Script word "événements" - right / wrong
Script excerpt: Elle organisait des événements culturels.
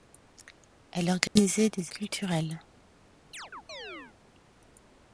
wrong